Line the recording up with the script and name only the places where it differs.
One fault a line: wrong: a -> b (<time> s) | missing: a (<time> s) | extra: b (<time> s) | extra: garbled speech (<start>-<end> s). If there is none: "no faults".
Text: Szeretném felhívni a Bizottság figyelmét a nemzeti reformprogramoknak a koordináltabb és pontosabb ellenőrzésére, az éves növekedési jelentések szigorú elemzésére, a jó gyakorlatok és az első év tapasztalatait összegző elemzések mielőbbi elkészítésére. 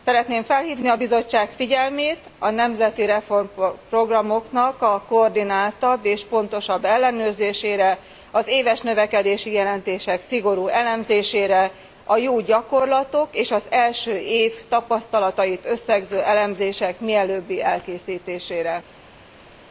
no faults